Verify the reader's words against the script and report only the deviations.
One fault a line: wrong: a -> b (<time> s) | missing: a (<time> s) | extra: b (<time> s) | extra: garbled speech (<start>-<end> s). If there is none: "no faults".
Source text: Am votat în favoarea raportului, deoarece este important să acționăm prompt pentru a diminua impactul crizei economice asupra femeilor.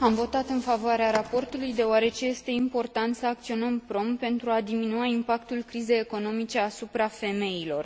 no faults